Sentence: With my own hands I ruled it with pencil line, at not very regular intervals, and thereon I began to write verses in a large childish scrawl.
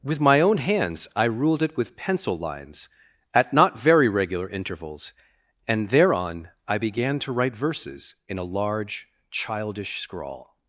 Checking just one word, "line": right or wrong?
wrong